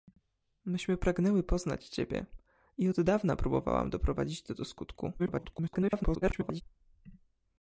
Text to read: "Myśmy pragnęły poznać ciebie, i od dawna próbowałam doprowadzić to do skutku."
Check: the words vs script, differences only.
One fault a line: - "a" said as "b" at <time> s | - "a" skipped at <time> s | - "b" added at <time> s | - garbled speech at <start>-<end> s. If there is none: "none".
- garbled speech at 5.2-6.6 s